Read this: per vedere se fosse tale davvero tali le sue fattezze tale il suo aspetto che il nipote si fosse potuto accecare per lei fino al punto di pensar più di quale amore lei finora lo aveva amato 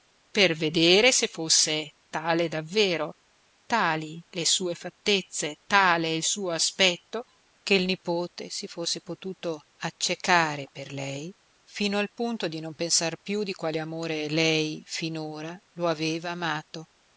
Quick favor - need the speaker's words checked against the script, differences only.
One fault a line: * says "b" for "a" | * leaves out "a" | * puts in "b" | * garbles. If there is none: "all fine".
* puts in "non"